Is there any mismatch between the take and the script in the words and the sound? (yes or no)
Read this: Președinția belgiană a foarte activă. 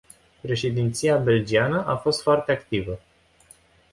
yes